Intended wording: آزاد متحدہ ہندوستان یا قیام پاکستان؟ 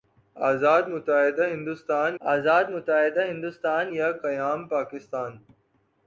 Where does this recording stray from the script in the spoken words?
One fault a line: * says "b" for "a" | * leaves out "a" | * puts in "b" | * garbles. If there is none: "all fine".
* puts in "آزاد متحدہ ہندوستان"